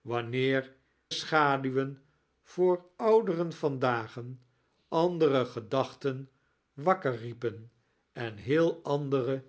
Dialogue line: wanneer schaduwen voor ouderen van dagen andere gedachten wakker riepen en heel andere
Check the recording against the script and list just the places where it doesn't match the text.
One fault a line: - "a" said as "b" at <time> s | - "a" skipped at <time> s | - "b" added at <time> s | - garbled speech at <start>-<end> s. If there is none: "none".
none